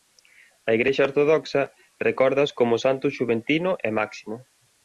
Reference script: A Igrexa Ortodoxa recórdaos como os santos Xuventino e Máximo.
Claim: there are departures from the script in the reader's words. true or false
false